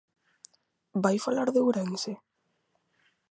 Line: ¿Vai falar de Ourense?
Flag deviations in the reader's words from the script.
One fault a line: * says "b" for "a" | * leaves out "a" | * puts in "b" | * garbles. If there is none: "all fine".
all fine